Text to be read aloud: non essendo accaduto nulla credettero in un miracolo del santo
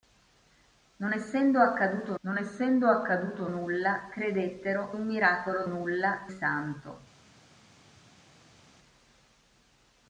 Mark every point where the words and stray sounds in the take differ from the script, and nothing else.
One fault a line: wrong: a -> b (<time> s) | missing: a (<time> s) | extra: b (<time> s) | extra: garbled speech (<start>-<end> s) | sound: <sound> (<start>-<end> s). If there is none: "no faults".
extra: non essendo accaduto (2.2 s)
missing: in (4.9 s)
wrong: del -> nulla (5.7 s)